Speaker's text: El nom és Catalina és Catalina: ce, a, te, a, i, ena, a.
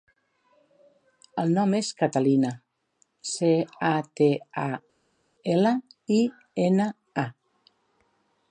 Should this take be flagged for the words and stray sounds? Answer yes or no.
yes